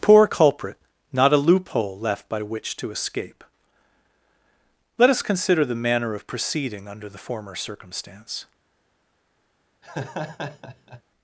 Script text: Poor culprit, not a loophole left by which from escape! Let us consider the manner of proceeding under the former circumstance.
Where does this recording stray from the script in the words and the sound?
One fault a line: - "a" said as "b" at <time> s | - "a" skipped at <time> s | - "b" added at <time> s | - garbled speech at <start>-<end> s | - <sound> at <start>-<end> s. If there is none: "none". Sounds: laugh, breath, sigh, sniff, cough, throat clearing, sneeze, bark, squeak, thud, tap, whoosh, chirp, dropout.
- "from" said as "to" at 2.8 s
- laugh at 9.8-11.0 s